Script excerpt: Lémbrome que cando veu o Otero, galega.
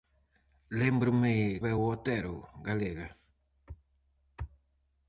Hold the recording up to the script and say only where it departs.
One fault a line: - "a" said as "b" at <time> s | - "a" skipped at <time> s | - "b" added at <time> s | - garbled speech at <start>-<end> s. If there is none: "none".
- "que cando" skipped at 1.4 s